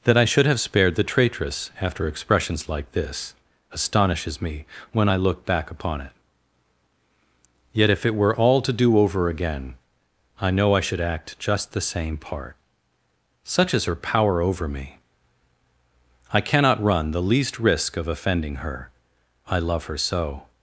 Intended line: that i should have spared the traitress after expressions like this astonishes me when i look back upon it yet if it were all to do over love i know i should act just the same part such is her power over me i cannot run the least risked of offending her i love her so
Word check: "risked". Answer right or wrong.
wrong